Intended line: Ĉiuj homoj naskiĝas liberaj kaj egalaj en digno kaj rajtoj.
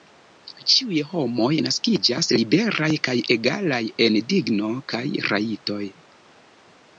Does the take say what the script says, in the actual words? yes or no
yes